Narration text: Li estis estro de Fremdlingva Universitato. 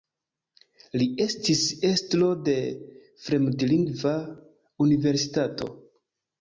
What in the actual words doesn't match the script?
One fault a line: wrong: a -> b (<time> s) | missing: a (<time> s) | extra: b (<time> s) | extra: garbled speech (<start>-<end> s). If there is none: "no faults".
no faults